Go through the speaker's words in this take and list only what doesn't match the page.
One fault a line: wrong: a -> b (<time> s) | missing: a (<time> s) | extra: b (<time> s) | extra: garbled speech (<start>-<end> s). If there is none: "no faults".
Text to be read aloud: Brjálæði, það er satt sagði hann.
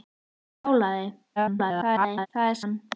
extra: garbled speech (1.4-2.3 s)
missing: satt sagði (2.6 s)